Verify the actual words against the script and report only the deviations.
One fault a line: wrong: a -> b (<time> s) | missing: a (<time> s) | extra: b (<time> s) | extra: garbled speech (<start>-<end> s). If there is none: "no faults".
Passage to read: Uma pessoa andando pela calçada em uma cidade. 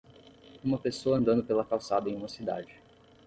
no faults